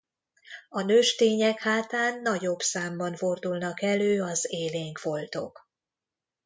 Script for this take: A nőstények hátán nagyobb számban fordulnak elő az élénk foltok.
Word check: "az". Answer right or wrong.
right